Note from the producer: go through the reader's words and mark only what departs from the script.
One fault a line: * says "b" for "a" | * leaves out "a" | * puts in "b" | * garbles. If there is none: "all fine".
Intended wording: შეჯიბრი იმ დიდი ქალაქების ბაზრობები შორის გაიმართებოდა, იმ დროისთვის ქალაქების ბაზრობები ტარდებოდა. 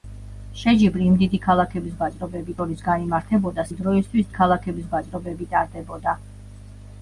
all fine